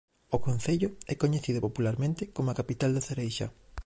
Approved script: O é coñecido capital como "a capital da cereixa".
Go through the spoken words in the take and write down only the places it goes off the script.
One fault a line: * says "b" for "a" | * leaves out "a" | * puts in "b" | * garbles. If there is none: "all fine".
* puts in "concello"
* says "popularmente" for "capital"